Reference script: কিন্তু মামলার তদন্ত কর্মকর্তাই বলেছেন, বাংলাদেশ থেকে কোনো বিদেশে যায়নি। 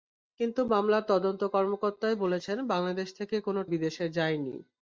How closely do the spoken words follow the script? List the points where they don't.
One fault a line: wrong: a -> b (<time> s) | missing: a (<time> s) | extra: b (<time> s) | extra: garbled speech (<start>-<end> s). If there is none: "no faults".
no faults